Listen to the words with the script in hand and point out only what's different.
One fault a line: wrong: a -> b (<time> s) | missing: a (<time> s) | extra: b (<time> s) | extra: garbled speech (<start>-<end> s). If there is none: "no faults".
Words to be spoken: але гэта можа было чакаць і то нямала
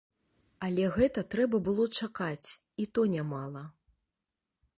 wrong: можа -> трэба (1.4 s)